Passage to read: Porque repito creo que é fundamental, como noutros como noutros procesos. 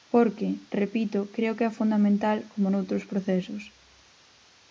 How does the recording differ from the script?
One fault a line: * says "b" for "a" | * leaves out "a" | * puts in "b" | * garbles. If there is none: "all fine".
* leaves out "como noutros"